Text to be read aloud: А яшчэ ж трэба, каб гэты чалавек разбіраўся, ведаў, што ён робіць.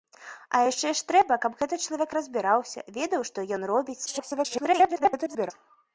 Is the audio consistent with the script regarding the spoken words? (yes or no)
no